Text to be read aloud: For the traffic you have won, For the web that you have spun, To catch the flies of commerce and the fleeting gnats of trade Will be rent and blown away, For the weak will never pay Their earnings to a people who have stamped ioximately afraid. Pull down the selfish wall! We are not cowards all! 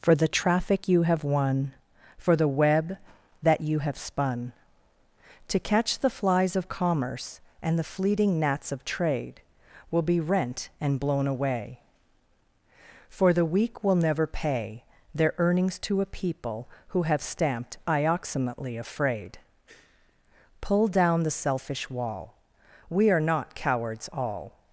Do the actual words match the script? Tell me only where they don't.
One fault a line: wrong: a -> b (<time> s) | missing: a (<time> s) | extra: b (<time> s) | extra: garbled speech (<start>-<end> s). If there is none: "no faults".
no faults